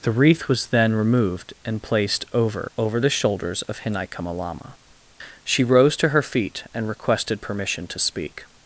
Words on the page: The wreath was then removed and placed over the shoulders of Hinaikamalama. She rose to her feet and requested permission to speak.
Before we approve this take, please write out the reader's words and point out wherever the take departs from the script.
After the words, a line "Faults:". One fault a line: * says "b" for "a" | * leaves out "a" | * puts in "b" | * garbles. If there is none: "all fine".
The wreath was then removed and placed over over the shoulders of Hinaikamalama. She rose to her feet and requested permission to speak.
Faults:
* puts in "over"